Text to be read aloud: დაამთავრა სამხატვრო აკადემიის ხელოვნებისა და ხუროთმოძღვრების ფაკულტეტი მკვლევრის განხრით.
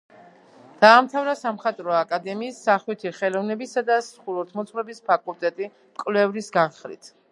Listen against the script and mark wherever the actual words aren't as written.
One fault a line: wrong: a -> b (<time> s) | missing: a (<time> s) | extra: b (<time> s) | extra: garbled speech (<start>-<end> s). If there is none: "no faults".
extra: სახვითი (2.7 s)